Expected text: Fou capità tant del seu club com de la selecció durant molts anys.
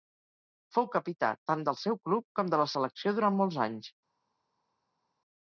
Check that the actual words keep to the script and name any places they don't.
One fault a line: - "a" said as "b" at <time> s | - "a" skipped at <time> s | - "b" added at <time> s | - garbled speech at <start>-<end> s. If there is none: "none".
none